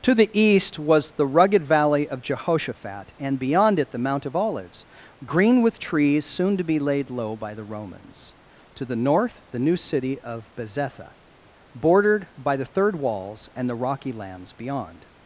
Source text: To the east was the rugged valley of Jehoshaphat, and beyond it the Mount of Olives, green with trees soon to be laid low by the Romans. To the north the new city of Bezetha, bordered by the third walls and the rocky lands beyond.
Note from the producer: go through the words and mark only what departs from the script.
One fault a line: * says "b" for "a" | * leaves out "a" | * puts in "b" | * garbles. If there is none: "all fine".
all fine